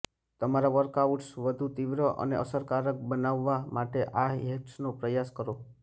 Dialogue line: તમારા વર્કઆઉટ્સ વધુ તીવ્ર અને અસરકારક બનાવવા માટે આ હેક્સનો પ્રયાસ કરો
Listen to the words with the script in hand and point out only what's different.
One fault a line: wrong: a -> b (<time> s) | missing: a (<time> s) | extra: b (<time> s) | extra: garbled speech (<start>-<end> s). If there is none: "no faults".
no faults